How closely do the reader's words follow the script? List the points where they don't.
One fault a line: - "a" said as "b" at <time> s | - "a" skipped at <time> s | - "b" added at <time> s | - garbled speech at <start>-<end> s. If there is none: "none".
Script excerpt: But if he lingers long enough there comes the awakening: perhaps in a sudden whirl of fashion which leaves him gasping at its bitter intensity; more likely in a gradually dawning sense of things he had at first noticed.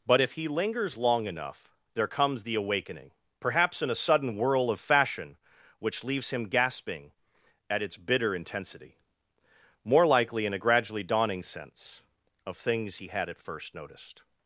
none